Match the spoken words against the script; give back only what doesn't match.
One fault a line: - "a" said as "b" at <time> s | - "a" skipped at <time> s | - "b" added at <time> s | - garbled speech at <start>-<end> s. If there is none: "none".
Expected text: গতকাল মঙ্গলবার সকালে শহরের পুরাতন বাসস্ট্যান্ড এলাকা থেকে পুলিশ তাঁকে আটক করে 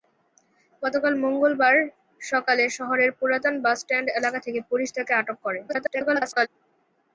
- garbled speech at 5.7-6.5 s